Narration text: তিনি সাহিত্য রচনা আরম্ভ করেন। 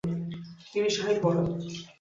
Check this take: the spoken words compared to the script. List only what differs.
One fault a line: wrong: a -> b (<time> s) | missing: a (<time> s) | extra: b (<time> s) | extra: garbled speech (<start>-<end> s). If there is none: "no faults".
missing: রচনা আরম্ভ (1.2 s)